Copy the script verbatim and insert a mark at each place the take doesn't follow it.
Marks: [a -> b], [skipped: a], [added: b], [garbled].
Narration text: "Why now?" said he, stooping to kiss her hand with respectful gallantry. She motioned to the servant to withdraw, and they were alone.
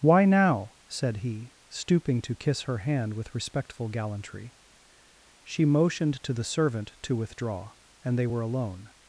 "Why now?" said he, stooping to kiss her hand with respectful gallantry. She motioned to the servant to withdraw, and they were alone.